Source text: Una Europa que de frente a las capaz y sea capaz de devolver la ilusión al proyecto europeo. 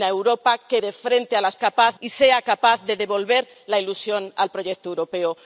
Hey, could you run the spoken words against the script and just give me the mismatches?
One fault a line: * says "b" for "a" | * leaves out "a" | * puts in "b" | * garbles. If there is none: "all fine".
all fine